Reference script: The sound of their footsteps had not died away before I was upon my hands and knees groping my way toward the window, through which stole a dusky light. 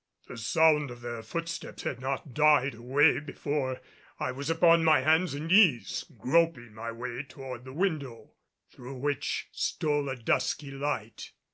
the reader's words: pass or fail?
pass